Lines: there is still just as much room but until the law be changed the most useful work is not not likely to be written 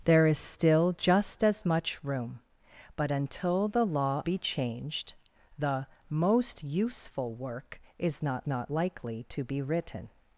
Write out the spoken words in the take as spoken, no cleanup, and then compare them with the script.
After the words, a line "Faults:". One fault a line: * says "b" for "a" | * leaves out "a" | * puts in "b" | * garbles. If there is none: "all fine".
there is still just as much room but until the law be changed the most useful work is not not likely to be written
Faults:
all fine